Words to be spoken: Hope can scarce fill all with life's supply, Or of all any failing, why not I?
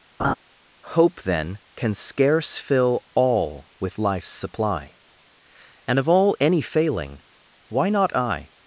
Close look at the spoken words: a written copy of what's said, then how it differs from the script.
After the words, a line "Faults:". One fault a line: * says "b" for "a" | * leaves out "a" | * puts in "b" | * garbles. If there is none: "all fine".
Hope then can scarce fill all with life's supply, And of all any failing, why not I?
Faults:
* puts in "then"
* says "And" for "Or"